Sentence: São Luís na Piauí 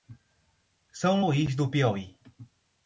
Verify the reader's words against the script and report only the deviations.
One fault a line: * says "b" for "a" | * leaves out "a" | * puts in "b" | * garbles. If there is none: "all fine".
* says "do" for "na"